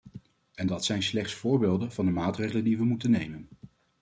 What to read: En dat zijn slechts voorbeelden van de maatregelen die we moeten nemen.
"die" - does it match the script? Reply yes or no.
yes